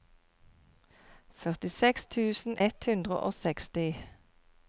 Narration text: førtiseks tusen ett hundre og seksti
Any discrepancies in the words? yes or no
no